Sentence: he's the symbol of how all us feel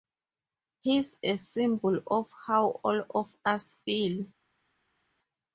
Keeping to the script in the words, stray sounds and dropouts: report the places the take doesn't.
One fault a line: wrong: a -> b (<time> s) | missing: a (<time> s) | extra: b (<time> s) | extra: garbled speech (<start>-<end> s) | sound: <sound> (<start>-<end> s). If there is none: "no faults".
wrong: the -> a (1.2 s)
extra: of (3.1 s)